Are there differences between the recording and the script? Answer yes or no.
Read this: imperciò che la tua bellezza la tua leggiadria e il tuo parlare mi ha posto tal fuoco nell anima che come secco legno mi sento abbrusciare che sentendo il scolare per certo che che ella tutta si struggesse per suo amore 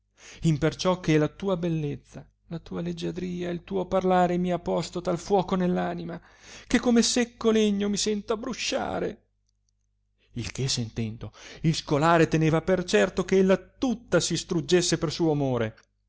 yes